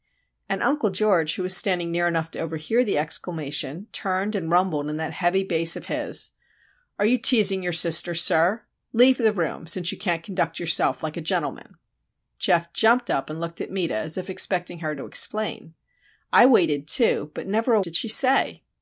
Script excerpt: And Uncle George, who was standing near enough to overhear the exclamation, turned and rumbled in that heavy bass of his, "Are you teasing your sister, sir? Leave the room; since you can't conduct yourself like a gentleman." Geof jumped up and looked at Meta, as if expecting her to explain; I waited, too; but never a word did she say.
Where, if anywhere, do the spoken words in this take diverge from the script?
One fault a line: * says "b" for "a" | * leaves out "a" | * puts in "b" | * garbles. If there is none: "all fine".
* leaves out "word"